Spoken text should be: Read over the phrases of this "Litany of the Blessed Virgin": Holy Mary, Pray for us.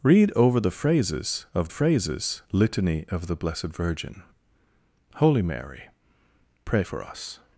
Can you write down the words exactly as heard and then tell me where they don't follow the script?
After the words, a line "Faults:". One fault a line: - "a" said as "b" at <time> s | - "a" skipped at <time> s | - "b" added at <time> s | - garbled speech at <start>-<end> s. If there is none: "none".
Read over the phrases of phrases "Litany of the Blessed Virgin": Holy Mary, Pray for us.
Faults:
- "this" said as "phrases" at 1.7 s